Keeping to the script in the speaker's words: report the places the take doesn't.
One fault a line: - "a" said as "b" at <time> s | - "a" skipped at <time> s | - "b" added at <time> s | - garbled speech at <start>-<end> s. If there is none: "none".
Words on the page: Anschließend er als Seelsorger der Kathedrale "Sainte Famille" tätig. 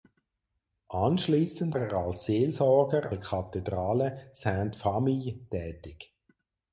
none